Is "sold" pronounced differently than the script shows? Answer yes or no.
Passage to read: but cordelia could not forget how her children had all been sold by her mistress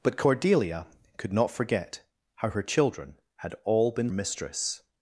yes